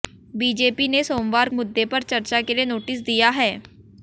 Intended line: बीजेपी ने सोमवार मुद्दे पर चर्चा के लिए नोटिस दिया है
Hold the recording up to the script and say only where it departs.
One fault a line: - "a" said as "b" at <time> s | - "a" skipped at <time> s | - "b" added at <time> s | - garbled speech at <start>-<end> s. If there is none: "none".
none